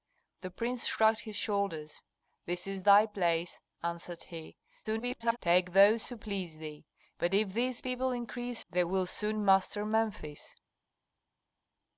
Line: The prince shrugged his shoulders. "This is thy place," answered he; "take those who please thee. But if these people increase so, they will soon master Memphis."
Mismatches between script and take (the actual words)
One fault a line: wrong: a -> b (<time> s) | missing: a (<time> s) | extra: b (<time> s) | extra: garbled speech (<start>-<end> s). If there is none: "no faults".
extra: garbled speech (4.8-5.4 s)
missing: so (8.6 s)